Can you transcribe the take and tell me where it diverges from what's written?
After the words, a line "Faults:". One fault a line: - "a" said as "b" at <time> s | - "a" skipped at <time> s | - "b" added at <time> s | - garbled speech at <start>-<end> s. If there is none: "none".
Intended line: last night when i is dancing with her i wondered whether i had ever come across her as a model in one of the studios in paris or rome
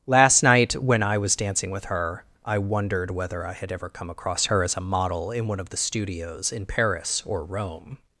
last night when i was dancing with her i wondered whether i had ever come across her as a model in one of the studios in paris or rome
Faults:
- "is" said as "was" at 1.2 s